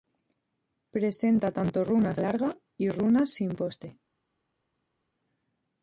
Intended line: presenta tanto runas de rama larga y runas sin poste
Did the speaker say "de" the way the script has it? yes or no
no